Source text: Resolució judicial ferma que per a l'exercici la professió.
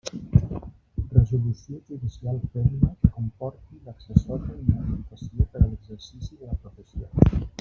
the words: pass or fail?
fail